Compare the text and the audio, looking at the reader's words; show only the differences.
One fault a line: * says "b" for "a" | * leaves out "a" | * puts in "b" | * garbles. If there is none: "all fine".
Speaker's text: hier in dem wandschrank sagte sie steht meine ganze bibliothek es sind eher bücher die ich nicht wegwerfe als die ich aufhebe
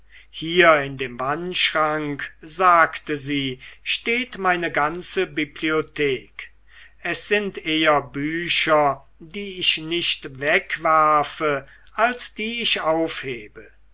all fine